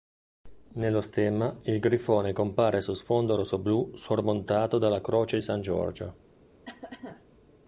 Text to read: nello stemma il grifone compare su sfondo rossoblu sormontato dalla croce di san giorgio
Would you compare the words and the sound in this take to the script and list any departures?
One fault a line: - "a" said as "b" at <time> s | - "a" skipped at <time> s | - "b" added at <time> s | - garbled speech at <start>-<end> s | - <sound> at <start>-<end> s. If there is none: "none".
- cough at 6.7-7.2 s